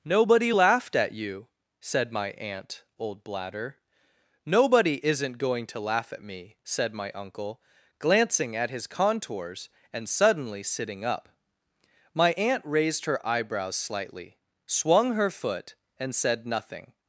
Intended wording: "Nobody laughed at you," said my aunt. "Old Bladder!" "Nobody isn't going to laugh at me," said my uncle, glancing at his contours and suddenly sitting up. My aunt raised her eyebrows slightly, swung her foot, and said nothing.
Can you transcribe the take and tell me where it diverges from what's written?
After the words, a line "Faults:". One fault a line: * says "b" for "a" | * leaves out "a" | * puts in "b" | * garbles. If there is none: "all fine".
"Nobody laughed at you," said my aunt. "Old Bladder!" "Nobody isn't going to laugh at me," said my uncle, glancing at his contours and suddenly sitting up. My aunt raised her eyebrows slightly, swung her foot, and said nothing.
Faults:
all fine